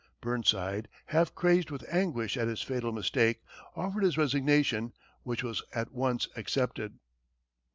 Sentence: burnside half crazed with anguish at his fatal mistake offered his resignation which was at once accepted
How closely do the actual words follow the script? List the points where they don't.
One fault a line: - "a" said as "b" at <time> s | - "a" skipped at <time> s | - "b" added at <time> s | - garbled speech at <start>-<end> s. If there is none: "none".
none